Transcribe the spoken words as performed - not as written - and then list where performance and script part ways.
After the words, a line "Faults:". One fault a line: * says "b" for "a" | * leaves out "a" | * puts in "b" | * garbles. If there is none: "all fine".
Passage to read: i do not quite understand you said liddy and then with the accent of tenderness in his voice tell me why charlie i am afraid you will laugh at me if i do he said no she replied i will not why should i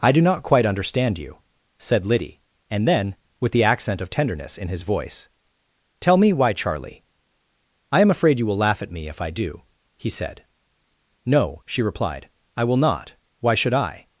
i do not quite understand you said liddy and then with the accent of tenderness in his voice tell me why charlie i am afraid you will laugh at me if i do he said no she replied i will not why should i
Faults:
all fine